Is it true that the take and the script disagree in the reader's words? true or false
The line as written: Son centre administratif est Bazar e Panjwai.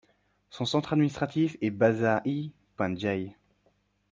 false